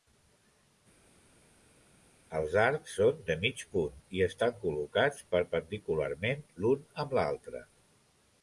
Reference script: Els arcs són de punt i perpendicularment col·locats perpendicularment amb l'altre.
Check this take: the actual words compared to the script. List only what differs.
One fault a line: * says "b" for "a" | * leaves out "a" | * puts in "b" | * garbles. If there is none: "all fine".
* puts in "mig"
* says "estan" for "perpendicularment"
* puts in "l'un"